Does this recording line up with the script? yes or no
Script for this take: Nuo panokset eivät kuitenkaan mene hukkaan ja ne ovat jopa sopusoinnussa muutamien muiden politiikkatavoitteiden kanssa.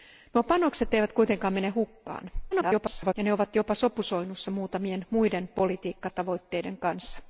no